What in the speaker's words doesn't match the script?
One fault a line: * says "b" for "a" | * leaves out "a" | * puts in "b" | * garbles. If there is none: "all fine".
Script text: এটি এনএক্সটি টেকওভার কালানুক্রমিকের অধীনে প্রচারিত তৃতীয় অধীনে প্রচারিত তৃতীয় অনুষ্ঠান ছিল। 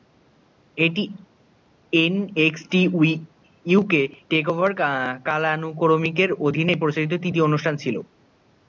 * puts in "ইউকে"
* leaves out "অধীনে প্রচারিত তৃতীয়"